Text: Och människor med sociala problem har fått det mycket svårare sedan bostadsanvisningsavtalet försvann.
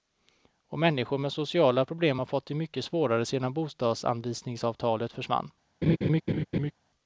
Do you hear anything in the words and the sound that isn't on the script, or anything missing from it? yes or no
yes